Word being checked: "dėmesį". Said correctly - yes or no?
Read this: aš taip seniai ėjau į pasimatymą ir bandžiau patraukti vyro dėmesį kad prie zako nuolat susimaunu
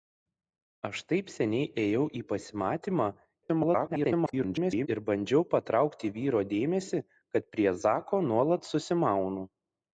yes